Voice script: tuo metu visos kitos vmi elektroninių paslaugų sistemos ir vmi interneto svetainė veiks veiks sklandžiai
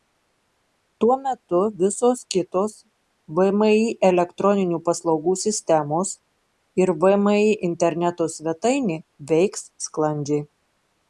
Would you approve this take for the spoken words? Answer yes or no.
no